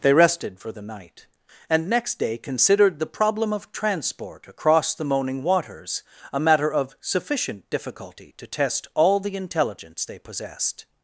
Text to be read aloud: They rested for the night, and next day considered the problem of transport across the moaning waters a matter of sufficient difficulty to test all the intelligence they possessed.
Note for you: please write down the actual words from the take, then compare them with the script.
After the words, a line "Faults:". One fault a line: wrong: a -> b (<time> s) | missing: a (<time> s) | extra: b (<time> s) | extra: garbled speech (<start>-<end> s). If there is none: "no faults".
They rested for the night, and next day considered the problem of transport across the moaning waters a matter of sufficient difficulty to test all the intelligence they possessed.
Faults:
no faults